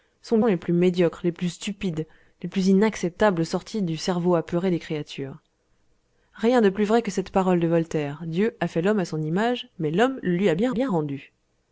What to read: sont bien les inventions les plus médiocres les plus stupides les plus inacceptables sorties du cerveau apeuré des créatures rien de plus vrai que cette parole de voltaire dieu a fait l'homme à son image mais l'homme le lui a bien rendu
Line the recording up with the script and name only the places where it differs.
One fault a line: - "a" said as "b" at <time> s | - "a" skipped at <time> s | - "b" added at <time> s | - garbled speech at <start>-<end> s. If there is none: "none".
- "bien" skipped at 0.4 s
- "inventions les" skipped at 0.6 s
- "bien" added at 10.7 s